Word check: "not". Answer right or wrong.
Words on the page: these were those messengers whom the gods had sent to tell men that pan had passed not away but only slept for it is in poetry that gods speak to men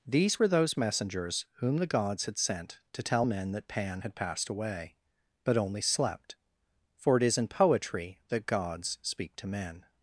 wrong